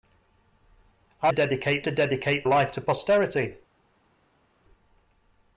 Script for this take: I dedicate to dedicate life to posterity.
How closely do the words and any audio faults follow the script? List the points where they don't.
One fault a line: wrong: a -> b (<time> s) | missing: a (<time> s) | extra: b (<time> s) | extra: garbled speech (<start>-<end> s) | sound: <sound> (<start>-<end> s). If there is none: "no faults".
no faults